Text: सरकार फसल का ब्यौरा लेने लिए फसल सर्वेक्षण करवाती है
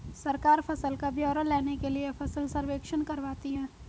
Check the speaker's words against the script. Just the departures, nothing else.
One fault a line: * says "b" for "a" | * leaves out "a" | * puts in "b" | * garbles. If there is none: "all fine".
* puts in "के"